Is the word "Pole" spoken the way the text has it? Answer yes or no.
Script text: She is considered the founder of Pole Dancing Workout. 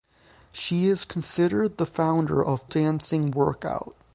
no